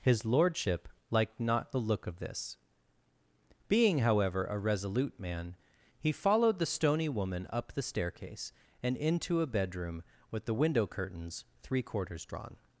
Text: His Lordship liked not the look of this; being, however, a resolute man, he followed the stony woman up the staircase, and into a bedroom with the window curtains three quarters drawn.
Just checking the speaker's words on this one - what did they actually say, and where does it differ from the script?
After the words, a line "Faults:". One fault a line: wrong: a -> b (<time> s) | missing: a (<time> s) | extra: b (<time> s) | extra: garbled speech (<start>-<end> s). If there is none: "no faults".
His Lordship liked not the look of this; being, however, a resolute man, he followed the stony woman up the staircase, and into a bedroom with the window curtains three quarters drawn.
Faults:
no faults